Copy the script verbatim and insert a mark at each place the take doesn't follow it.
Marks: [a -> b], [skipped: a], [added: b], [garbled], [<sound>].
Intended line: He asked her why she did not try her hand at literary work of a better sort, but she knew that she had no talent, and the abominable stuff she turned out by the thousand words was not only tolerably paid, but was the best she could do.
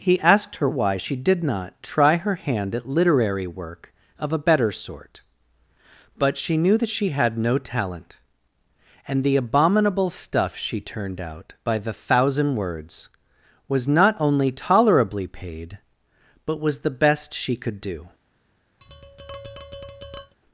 He asked her why she did not try her hand at literary work of a better sort, but she knew that she had no talent, and the abominable stuff she turned out by the thousand words was not only tolerably paid, but was the best she could do. [tap]